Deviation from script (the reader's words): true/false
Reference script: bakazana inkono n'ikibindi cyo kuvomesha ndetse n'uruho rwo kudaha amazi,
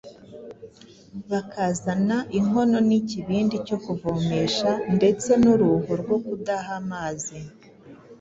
false